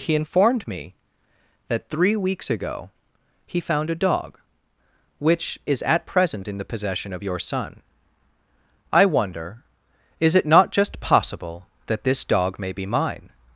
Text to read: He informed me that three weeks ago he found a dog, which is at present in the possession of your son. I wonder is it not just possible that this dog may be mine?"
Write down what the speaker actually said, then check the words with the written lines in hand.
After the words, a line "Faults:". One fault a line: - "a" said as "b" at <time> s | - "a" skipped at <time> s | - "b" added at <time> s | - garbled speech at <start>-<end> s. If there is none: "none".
He informed me that three weeks ago he found a dog, which is at present in the possession of your son. I wonder is it not just possible that this dog may be mine?"
Faults:
none